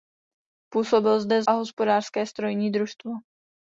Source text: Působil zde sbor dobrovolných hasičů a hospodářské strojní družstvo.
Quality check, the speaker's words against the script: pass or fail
fail